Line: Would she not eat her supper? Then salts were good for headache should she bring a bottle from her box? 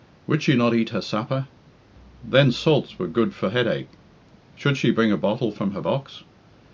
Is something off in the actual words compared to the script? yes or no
no